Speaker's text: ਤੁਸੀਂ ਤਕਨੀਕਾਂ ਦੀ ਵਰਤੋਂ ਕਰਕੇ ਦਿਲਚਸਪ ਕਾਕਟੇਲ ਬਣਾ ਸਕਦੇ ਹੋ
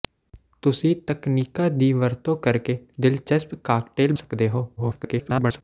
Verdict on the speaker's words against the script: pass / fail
fail